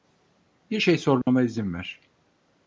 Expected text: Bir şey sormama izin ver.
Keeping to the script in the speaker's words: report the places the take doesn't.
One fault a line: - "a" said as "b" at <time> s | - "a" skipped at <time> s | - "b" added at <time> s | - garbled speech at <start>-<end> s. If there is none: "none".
none